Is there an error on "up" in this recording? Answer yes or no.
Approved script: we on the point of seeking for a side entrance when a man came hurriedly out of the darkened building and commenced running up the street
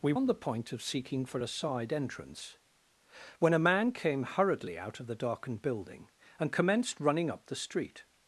no